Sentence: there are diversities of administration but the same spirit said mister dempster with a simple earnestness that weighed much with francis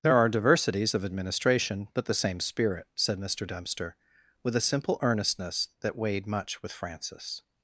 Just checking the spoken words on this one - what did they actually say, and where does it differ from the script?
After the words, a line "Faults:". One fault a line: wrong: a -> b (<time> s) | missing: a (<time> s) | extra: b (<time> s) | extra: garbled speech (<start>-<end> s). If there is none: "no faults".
there are diversities of administration but the same spirit said mister dempster with a simple earnestness that weighed much with francis
Faults:
no faults